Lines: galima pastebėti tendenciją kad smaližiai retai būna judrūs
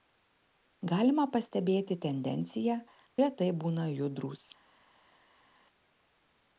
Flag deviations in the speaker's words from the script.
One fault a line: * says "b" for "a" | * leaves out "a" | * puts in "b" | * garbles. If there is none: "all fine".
* leaves out "kad smaližiai"